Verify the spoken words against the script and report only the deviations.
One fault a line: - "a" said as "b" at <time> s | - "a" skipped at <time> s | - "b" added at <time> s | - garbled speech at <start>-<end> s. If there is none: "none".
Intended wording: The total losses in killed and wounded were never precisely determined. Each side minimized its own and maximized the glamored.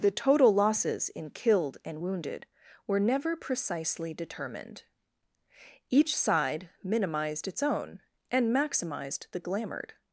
none